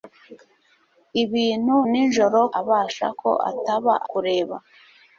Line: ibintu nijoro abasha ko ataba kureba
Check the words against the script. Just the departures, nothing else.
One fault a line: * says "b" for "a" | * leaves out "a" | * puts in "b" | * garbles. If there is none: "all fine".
all fine